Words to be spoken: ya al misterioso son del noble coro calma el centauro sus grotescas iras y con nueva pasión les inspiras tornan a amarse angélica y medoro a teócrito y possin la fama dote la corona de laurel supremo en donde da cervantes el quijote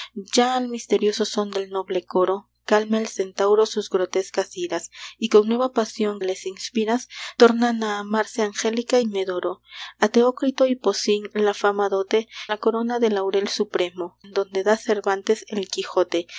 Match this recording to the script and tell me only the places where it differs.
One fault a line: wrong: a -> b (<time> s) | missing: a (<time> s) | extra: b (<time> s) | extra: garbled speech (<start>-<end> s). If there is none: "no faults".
no faults